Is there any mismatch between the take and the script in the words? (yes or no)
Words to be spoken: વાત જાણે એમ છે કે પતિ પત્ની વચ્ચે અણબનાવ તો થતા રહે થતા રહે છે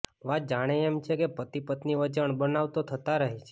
yes